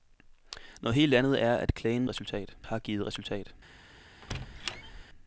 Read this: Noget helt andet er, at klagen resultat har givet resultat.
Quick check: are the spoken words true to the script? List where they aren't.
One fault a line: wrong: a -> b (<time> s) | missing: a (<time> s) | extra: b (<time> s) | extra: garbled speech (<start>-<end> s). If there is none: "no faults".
no faults